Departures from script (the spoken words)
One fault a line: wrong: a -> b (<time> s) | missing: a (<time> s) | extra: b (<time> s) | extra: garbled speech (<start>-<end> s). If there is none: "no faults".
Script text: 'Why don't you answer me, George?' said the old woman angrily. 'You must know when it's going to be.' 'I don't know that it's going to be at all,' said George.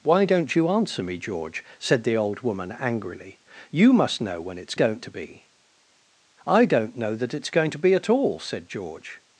wrong: going -> don't (4.7 s)